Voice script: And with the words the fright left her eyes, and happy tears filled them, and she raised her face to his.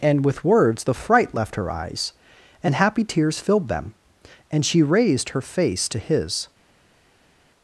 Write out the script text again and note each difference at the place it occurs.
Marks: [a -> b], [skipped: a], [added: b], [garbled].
And with [skipped: the] words the fright left her eyes, and happy tears filled them, and she raised her face to his.